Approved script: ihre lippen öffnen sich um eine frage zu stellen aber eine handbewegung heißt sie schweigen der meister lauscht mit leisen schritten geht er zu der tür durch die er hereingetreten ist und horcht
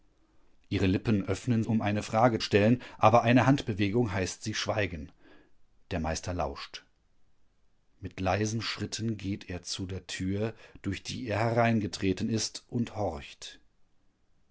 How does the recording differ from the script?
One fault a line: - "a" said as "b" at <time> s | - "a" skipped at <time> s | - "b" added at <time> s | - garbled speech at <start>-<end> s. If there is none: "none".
- "sich" skipped at 1.6 s
- "zu" skipped at 2.4 s